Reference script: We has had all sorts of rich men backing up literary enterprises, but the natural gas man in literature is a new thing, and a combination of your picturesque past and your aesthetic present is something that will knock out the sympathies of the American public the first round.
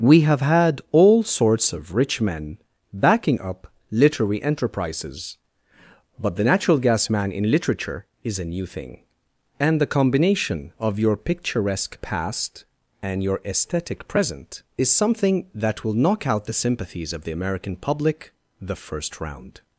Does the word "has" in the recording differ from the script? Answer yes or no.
yes